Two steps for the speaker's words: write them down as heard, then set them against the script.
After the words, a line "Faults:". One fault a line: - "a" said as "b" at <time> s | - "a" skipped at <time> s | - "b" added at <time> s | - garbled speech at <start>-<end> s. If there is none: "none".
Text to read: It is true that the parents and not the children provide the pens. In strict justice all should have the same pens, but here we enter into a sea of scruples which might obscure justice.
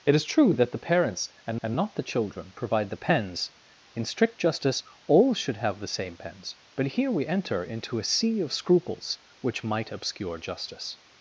It is true that the parents and and not the children provide the pens. In strict justice all should have the same pens, but here we enter into a sea of scruples which might obscure justice.
Faults:
- "and" added at 1.6 s